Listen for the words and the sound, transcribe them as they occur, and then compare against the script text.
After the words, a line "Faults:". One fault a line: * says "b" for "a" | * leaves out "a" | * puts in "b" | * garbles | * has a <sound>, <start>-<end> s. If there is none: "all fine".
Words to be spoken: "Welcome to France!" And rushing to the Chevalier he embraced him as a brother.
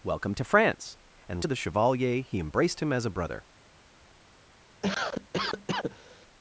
"Welcome to France!" And to the Chevalier he embraced him as a brother.
Faults:
* leaves out "rushing"
* has a cough, 4.8-6.3 s